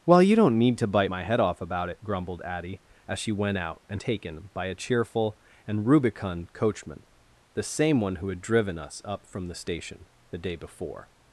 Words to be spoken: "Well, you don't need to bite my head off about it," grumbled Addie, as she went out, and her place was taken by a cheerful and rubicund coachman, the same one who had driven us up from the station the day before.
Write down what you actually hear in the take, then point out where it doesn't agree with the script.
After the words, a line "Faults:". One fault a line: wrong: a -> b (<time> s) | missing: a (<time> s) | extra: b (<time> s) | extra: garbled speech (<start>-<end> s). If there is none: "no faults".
"Well, you don't need to bite my head off about it," grumbled Addie, as she went out, and taken by a cheerful and rubicund coachman, the same one who had driven us up from the station the day before.
Faults:
missing: her place was (4.0 s)